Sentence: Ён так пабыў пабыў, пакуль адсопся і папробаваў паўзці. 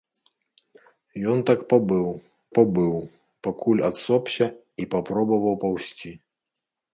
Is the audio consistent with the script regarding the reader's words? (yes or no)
yes